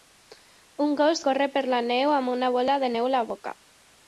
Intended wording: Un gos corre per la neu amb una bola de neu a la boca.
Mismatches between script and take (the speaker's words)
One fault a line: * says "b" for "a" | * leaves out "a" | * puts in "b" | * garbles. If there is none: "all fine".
all fine